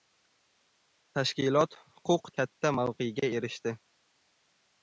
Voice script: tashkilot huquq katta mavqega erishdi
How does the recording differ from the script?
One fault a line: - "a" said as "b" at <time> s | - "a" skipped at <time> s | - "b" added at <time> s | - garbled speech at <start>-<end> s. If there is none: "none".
none